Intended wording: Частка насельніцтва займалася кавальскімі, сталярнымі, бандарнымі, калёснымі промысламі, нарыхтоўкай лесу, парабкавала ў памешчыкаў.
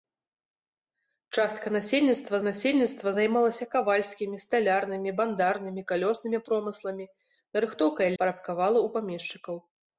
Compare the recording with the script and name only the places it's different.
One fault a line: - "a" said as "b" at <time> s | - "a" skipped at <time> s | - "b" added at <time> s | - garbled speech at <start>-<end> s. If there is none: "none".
- "насельніцтва" added at 2.5 s
- "лесу" skipped at 8.1 s